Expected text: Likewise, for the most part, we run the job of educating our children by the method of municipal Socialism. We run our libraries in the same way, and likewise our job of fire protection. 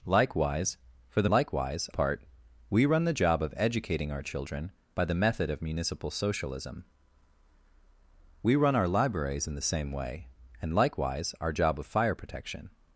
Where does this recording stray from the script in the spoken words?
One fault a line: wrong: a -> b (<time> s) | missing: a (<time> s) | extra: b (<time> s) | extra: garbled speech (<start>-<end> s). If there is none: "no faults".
wrong: most -> likewise (1.3 s)